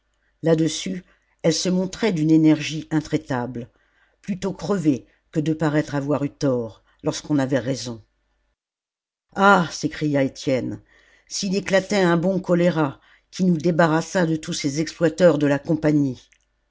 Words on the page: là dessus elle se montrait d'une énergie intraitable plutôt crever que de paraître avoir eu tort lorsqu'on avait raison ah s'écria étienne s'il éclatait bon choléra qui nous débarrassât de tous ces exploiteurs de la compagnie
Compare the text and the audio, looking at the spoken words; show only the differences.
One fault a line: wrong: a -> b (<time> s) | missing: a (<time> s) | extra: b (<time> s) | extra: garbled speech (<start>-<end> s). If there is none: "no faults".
extra: un (12.0 s)